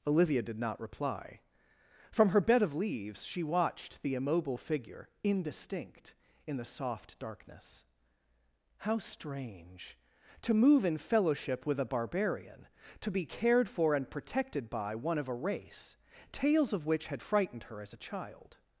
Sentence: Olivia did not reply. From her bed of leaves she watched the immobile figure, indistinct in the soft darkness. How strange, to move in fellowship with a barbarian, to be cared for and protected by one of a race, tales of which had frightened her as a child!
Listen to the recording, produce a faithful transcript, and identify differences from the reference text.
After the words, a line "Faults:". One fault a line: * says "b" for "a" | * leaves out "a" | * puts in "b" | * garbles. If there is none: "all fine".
Olivia did not reply. From her bed of leaves she watched the immobile figure, indistinct in the soft darkness. How strange, to move in fellowship with a barbarian, to be cared for and protected by one of a race, tales of which had frightened her as a child!
Faults:
all fine